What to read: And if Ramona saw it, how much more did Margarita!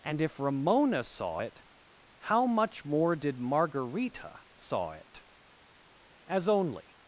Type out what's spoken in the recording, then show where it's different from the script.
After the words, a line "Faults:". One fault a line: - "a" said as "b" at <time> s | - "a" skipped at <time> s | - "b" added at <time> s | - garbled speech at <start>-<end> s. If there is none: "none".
And if Ramona saw it, how much more did Margarita! Saw it, as only
Faults:
- "Saw it as only" added at 4.5 s